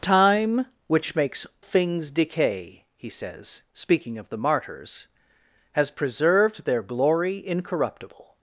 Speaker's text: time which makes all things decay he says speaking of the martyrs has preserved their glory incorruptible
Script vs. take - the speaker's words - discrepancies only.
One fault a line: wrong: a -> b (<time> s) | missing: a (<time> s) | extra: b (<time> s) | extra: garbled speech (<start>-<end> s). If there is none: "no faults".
missing: all (1.4 s)